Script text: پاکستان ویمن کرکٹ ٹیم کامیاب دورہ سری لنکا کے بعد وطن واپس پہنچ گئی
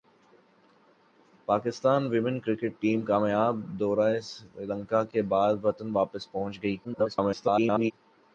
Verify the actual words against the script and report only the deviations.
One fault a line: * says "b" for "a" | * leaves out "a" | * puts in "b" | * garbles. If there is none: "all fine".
* garbles